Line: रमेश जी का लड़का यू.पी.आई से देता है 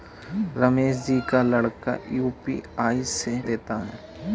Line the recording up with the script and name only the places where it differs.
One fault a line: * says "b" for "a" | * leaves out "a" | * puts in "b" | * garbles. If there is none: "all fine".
all fine